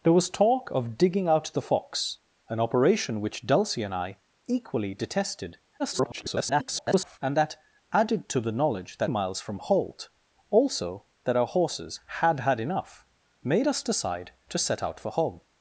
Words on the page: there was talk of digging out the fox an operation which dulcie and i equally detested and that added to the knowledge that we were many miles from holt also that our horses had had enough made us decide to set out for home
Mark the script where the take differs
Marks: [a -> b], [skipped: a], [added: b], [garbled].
there was talk of digging out the fox an operation which dulcie and i equally detested [garbled] and that added to the knowledge that [skipped: we were many] miles from holt also that our horses had had enough made us decide to set out for home